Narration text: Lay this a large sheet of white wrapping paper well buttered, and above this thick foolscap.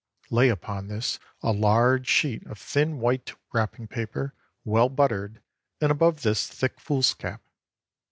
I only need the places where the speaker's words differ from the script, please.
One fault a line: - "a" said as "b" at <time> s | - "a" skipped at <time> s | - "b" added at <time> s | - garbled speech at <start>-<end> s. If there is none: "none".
- "upon" added at 0.5 s
- "thin" added at 2.6 s